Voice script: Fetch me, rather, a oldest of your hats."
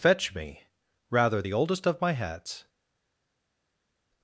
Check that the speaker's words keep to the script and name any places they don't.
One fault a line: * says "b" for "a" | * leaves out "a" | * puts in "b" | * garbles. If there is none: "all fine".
* says "the" for "a"
* says "my" for "your"